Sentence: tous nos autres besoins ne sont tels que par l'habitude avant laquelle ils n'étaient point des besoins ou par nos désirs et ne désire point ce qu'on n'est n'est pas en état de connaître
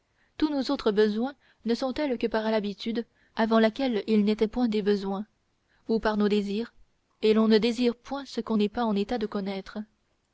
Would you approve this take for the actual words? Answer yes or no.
no